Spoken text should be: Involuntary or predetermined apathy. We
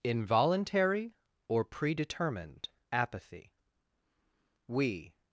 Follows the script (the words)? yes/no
yes